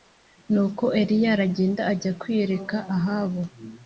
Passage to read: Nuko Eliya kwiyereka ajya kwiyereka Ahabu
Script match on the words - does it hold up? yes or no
no